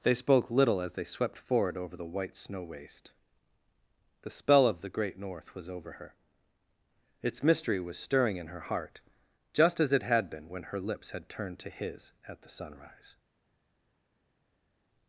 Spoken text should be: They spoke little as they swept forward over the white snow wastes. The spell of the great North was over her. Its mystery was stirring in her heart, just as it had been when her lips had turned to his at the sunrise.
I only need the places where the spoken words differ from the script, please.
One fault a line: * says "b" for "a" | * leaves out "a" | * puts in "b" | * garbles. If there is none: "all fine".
* says "waste" for "wastes"